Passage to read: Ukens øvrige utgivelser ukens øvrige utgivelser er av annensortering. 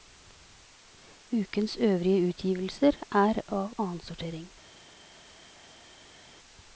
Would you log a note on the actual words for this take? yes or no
yes